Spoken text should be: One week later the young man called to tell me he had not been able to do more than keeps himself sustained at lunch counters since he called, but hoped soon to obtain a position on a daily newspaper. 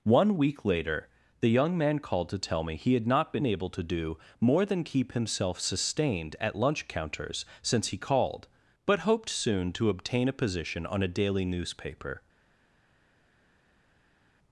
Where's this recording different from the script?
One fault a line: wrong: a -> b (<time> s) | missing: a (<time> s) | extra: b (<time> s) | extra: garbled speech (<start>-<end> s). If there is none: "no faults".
wrong: keeps -> keep (4.8 s)